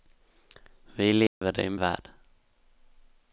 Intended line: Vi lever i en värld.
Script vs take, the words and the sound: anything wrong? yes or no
yes